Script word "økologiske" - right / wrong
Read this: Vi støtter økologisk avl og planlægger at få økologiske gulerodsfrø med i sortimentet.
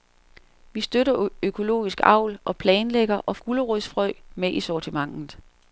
wrong